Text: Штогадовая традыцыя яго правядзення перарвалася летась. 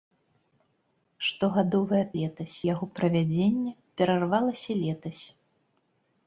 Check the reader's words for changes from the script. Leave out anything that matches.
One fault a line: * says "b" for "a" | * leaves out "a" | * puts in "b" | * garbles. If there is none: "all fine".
* says "летась" for "традыцыя"